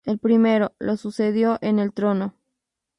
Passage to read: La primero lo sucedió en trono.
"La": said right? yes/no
no